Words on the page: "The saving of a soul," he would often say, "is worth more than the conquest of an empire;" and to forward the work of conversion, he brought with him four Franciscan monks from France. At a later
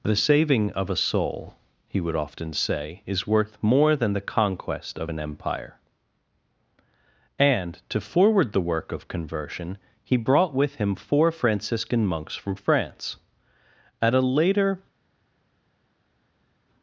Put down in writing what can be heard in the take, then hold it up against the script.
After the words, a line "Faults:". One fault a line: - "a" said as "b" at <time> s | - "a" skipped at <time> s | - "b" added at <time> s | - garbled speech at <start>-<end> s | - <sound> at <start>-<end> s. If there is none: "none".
"The saving of a soul," he would often say, "is worth more than the conquest of an empire;" and to forward the work of conversion, he brought with him four Franciscan monks from France. At a later
Faults:
none